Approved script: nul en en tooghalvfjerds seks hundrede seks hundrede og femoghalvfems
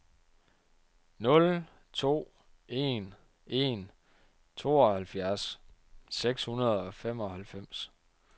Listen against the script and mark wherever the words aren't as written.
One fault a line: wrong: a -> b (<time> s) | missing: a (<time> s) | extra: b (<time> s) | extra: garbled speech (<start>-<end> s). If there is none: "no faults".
extra: to (1.9 s)
missing: seks hundrede (6.8 s)